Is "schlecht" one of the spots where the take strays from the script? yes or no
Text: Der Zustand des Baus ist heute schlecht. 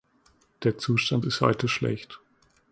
no